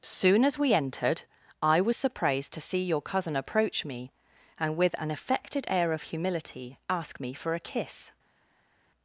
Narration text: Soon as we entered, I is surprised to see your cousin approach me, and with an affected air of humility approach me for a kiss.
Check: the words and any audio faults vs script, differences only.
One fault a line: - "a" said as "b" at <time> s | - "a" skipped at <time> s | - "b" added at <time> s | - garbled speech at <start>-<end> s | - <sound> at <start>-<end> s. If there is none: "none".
- "is" said as "was" at 1.8 s
- "approach" said as "ask" at 6.9 s